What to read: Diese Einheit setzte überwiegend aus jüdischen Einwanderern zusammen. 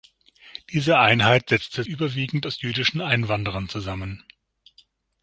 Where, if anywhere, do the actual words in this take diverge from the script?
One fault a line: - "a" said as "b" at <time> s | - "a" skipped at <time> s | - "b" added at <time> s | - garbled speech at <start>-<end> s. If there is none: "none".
none